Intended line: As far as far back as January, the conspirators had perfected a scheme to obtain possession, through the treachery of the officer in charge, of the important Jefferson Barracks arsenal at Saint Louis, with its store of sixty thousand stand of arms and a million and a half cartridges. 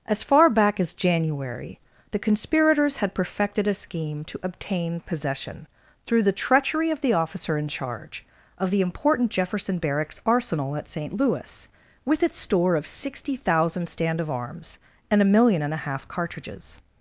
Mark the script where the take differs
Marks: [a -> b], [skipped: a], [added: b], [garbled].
As far [skipped: as far] back as January, the conspirators had perfected a scheme to obtain possession, through the treachery of the officer in charge, of the important Jefferson Barracks arsenal at Saint Louis, with its store of sixty thousand stand of arms and a million and a half cartridges.